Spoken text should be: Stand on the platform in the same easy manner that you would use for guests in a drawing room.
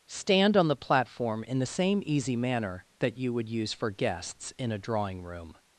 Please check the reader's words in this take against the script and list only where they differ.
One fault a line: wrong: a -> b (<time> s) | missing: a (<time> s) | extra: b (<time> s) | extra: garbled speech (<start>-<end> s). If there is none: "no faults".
no faults